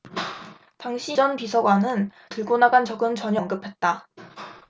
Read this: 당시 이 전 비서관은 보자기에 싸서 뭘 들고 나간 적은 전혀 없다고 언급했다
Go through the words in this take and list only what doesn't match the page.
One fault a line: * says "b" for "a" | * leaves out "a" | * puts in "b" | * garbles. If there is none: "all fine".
* leaves out "이"
* leaves out "보자기에 싸서 뭘"
* leaves out "없다고"